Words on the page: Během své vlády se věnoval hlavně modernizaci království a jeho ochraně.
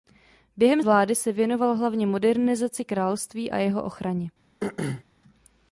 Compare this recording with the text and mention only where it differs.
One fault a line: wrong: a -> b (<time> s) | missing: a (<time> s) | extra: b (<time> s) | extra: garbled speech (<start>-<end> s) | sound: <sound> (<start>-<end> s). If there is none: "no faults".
missing: své (0.8 s)
sound: throat clearing (4.6-5.0 s)